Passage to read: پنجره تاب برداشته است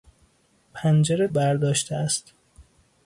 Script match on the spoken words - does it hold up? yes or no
no